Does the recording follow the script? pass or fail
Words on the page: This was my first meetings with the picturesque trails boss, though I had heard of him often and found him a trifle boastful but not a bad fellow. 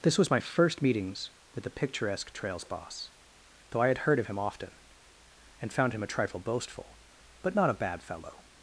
pass